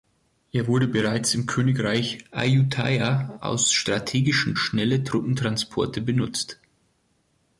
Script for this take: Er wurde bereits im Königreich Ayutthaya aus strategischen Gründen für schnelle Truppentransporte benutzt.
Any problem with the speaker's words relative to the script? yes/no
yes